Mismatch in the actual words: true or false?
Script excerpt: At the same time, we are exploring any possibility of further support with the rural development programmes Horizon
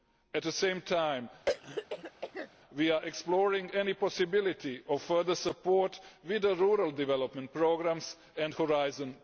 true